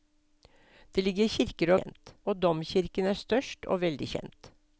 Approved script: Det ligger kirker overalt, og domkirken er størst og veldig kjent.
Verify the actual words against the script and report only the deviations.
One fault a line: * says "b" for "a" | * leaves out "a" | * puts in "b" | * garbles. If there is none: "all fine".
* says "kjent" for "overalt"